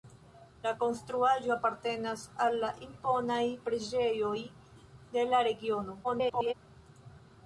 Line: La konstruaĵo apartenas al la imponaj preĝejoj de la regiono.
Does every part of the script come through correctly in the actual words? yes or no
no